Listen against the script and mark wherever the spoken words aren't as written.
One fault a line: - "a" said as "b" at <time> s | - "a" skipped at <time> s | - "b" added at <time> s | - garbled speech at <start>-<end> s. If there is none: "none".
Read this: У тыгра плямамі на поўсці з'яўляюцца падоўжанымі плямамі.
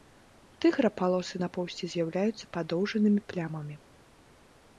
- "плямамі" said as "палосы" at 1.0 s